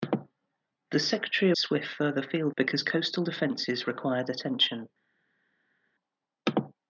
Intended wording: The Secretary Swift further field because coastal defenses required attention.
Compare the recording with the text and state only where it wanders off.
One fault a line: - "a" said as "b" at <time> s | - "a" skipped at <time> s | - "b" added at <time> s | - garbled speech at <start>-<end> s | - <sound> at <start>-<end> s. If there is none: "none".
none